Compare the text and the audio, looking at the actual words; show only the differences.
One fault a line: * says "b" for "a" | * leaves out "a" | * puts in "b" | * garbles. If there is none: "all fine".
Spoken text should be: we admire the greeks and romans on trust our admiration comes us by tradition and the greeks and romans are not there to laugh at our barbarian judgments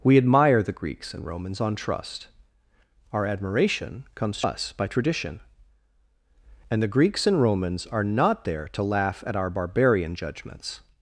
all fine